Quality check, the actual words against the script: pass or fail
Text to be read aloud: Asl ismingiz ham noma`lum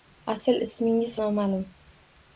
fail